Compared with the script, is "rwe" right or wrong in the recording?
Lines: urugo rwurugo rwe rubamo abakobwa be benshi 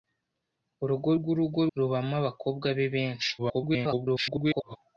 wrong